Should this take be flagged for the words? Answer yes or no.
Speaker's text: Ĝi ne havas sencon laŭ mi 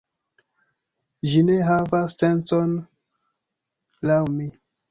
no